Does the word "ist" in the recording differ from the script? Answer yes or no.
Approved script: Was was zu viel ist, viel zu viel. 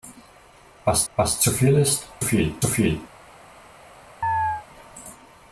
no